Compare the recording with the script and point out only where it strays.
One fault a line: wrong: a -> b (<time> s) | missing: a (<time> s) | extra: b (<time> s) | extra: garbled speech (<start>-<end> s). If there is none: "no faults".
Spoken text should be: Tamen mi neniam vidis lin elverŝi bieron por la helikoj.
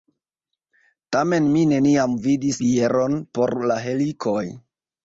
missing: lin elverŝi (2.6 s)